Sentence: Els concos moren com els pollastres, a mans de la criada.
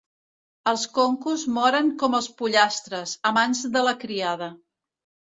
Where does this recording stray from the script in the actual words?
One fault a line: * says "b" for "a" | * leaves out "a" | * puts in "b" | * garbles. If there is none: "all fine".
all fine